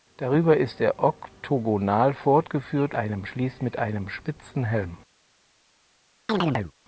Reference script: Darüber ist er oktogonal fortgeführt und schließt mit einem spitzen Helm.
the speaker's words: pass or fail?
fail